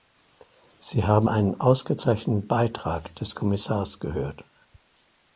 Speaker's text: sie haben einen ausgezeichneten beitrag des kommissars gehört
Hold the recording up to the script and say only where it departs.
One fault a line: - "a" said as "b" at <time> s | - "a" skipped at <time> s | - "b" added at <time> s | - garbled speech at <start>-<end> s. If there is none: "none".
none